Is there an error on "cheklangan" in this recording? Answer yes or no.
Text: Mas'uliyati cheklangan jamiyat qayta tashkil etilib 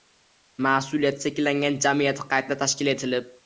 no